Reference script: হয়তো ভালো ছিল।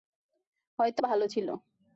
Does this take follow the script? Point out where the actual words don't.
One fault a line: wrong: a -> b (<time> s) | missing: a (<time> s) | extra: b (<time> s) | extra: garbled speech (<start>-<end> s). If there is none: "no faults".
no faults